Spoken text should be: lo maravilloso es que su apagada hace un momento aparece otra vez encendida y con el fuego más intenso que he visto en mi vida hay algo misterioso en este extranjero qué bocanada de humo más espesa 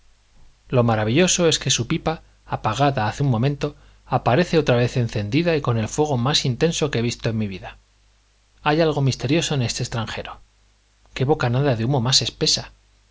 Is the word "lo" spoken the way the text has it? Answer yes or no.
yes